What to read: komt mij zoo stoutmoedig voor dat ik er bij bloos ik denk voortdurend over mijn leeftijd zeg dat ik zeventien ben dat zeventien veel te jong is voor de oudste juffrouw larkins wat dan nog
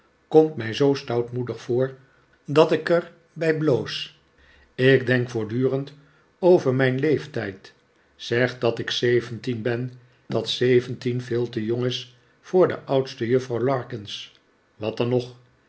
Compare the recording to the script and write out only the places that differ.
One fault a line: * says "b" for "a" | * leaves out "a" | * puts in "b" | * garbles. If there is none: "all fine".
all fine